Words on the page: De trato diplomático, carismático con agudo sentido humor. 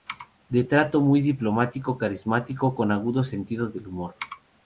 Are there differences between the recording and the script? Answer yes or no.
yes